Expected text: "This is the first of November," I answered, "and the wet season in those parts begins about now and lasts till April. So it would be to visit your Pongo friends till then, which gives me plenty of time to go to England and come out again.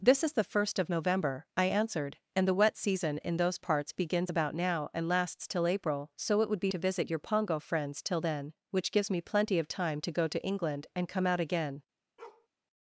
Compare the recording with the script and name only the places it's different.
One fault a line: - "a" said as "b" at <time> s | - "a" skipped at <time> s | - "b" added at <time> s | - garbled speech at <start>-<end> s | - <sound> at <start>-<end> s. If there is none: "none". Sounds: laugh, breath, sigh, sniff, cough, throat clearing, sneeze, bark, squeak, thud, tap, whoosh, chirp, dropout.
- bark at 12.2-12.5 s